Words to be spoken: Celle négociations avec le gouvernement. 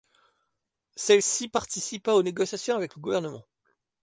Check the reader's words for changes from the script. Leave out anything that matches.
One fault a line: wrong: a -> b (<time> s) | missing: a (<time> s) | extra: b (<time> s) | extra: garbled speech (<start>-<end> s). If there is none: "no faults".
extra: ci participa aux (1.2 s)